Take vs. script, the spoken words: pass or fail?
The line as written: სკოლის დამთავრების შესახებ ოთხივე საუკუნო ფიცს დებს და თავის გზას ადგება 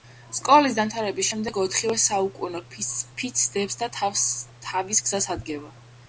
fail